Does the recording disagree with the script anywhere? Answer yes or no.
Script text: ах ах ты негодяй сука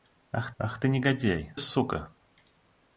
no